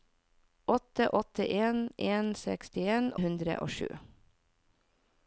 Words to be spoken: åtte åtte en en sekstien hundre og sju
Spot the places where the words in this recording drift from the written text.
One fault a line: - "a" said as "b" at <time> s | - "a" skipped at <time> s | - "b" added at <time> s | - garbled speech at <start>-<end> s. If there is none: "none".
none